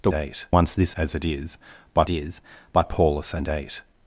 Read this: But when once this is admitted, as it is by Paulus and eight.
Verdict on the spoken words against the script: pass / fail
fail